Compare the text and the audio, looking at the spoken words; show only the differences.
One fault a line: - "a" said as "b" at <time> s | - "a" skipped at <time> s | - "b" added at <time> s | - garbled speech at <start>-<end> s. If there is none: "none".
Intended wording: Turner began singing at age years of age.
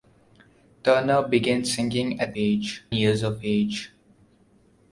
none